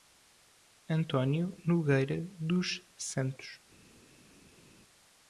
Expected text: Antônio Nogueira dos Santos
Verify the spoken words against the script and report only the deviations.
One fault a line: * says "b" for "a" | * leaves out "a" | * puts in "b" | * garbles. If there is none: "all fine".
all fine